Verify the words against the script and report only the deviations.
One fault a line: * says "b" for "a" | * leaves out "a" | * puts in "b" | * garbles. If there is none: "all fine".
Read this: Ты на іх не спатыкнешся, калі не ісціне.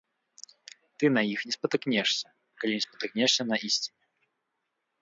* puts in "спатыкнешся на"